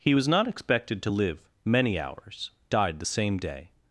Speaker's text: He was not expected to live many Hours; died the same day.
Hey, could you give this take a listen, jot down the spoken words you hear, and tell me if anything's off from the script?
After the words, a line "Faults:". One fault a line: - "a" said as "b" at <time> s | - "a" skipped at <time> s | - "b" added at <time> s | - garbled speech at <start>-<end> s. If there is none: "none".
He was not expected to live many Hours; died the same day.
Faults:
none